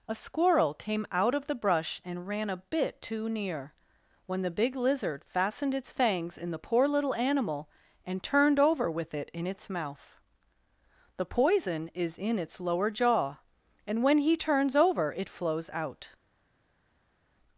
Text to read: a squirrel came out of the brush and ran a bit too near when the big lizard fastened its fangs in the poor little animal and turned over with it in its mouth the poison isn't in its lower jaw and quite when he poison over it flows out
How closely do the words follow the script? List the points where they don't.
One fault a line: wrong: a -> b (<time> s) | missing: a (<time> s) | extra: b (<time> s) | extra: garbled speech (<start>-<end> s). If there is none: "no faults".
wrong: isn't -> is (11.9 s)
missing: quite (14.0 s)
wrong: poison -> turns (14.4 s)